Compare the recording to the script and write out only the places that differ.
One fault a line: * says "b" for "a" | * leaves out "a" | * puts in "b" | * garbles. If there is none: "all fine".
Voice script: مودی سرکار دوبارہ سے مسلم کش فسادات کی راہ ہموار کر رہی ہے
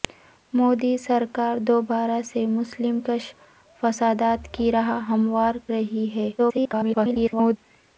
* leaves out "کر"
* garbles